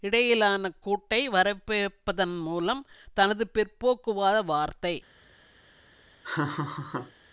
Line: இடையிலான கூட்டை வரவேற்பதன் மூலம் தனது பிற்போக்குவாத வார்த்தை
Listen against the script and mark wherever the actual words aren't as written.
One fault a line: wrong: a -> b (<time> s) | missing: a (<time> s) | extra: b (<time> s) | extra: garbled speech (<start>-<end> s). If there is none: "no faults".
no faults